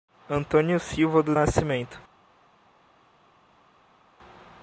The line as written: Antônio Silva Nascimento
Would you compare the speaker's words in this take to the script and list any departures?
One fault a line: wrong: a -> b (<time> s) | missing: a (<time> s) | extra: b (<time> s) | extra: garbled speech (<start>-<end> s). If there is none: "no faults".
extra: do (1.2 s)